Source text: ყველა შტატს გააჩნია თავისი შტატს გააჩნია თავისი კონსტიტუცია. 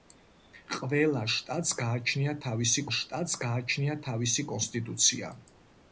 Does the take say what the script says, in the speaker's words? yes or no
yes